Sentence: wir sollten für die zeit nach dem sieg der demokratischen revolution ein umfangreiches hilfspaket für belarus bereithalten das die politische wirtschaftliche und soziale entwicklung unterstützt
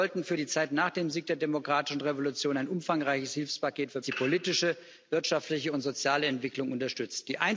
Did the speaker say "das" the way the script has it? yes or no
no